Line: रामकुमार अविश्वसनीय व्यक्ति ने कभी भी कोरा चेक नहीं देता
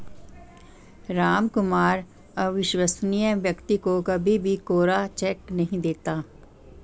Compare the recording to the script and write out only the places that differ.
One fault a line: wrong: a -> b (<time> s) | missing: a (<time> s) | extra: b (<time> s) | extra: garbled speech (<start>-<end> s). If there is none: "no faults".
wrong: ने -> को (3.8 s)